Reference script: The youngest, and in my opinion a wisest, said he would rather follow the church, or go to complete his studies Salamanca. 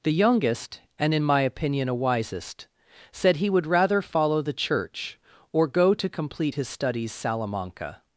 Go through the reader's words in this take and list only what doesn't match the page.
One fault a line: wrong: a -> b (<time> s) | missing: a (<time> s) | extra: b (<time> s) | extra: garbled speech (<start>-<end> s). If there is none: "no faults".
no faults